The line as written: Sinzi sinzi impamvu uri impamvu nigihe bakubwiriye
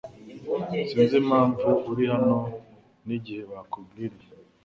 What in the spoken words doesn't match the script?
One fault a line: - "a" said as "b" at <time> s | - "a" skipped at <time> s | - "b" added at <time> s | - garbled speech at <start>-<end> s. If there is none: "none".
- "sinzi" skipped at 1.1 s
- "impamvu" said as "hano" at 2.1 s